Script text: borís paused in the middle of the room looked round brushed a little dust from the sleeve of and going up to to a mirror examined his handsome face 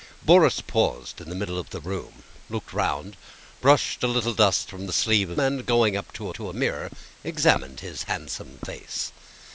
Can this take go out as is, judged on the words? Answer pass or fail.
pass